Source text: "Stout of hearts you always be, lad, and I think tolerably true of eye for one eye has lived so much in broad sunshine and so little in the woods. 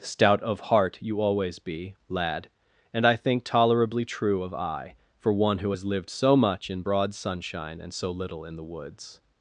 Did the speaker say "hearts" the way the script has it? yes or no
no